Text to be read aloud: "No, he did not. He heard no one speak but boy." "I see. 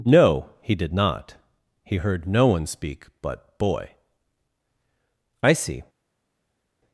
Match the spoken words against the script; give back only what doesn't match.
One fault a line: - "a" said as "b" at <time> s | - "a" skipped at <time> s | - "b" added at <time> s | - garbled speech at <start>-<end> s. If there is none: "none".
none